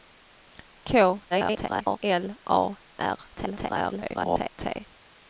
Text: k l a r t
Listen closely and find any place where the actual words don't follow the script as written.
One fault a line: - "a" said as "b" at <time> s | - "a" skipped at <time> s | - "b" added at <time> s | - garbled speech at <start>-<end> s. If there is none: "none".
- garbled speech at 1.3-2.0 s
- garbled speech at 3.3-4.5 s